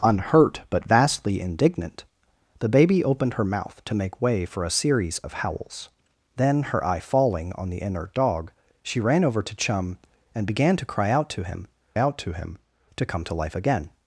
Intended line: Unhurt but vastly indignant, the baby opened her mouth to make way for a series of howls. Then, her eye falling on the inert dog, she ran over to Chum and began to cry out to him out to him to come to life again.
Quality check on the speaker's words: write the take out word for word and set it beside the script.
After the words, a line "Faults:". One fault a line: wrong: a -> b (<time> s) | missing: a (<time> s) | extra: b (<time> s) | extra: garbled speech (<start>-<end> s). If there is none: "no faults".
Unhurt but vastly indignant, the baby opened her mouth to make way for a series of howls. Then, her eye falling on the inert dog, she ran over to Chum and began to cry out to him out to him to come to life again.
Faults:
no faults